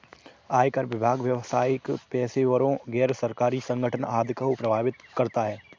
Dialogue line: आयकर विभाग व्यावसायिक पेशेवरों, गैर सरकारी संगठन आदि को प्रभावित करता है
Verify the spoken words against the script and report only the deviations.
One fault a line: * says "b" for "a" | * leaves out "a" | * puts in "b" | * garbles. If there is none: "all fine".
all fine